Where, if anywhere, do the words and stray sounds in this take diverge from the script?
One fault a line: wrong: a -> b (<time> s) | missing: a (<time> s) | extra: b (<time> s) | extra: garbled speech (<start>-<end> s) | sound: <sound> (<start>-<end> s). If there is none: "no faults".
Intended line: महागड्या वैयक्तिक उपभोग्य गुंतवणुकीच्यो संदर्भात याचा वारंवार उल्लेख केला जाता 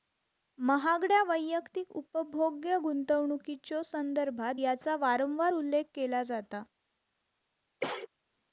sound: cough (7.8-8.1 s)